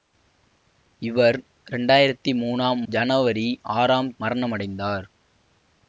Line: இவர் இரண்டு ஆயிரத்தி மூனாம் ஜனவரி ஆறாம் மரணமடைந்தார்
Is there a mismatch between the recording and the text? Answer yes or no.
no